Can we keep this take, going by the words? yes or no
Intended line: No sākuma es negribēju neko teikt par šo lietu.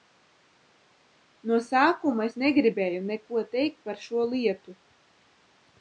yes